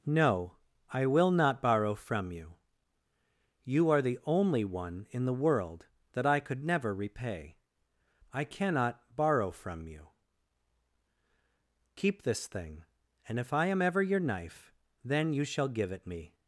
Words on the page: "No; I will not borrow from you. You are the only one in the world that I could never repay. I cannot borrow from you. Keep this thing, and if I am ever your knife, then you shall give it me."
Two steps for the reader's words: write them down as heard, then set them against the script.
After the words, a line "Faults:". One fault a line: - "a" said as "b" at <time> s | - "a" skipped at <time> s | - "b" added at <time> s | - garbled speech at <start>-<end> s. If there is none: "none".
"No; I will not borrow from you. You are the only one in the world that I could never repay. I cannot borrow from you. Keep this thing, and if I am ever your knife, then you shall give it me."
Faults:
none